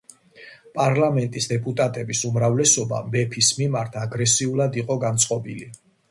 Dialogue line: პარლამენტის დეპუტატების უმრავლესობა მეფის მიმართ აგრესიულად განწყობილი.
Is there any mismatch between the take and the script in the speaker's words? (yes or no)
yes